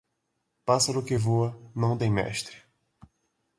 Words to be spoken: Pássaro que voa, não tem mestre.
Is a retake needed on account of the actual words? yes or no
no